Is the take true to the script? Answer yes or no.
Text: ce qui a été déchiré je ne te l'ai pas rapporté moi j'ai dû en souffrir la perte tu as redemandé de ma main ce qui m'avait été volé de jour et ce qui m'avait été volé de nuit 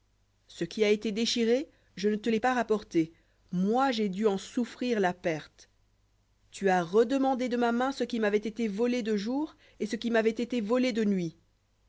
yes